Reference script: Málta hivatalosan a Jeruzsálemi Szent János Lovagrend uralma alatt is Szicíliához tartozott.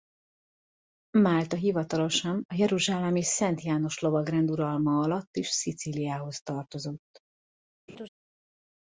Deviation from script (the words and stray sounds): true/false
true